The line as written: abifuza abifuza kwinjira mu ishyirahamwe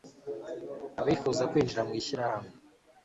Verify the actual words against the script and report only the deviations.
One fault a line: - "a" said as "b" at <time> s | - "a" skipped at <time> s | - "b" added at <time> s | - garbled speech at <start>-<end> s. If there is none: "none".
- "abifuza" skipped at 1.4 s